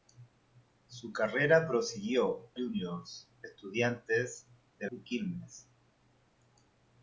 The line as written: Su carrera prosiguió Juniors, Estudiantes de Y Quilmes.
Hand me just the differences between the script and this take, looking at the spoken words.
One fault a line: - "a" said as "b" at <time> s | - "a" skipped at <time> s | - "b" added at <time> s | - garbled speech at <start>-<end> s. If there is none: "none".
none